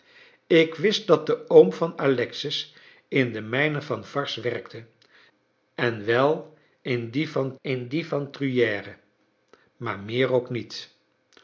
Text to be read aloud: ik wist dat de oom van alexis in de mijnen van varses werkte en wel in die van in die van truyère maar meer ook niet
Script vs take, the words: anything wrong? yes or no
no